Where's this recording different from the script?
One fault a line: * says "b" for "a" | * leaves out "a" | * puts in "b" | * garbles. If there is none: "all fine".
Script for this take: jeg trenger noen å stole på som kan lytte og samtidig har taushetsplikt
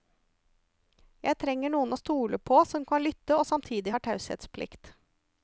all fine